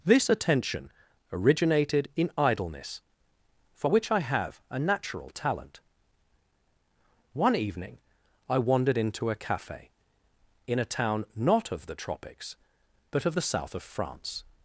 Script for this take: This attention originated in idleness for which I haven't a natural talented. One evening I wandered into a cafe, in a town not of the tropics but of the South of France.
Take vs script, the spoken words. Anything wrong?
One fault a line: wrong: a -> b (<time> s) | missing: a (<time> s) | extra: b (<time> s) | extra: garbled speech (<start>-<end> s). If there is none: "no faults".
wrong: haven't -> have (4.2 s)
wrong: talented -> talent (5.3 s)